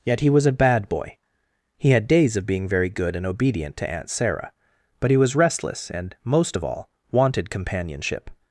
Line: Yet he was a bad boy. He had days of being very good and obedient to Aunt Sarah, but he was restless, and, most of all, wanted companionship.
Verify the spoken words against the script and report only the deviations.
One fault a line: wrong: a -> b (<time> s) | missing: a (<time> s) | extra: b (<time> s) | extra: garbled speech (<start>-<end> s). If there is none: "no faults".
no faults